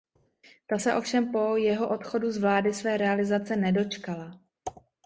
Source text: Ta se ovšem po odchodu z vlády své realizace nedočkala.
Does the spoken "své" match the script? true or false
true